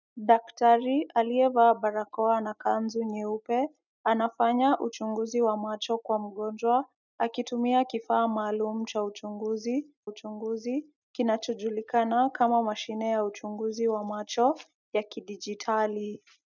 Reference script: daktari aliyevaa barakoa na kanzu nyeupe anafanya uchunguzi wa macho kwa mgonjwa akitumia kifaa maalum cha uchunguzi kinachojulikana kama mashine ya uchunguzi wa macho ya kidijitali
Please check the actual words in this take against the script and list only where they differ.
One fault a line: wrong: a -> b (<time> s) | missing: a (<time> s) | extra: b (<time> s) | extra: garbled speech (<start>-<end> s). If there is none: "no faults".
extra: uchunguzi (10.0 s)